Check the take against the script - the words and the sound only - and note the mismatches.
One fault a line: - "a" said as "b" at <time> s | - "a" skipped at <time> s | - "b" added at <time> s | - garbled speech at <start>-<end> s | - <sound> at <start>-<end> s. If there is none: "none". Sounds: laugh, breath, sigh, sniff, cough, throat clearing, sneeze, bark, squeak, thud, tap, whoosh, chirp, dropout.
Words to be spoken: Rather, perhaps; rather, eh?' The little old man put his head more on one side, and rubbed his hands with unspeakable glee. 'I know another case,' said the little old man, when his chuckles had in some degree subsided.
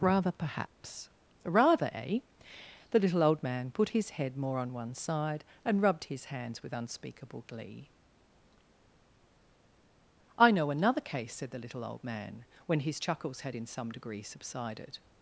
none